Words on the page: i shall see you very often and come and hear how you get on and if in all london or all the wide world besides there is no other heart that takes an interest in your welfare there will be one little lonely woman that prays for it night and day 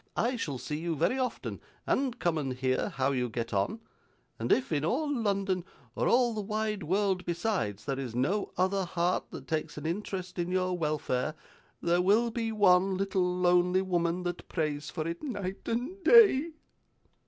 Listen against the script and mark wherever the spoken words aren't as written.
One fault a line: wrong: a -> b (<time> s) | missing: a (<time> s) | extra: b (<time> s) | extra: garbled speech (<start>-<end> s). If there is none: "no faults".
no faults